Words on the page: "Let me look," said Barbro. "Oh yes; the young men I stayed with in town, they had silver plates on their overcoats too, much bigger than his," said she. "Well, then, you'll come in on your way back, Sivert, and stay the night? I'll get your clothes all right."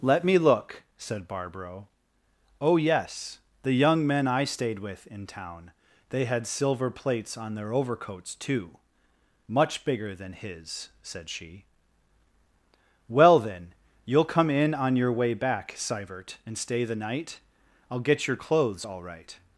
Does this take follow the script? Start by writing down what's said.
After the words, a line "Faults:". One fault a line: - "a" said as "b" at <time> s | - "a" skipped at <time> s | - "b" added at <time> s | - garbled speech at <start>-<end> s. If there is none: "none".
"Let me look," said Barbro. "Oh yes; the young men I stayed with in town, they had silver plates on their overcoats too, much bigger than his," said she. "Well, then, you'll come in on your way back, Sivert, and stay the night? I'll get your clothes all right."
Faults:
none